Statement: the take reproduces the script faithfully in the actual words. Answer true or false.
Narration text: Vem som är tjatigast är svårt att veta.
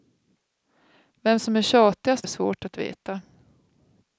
true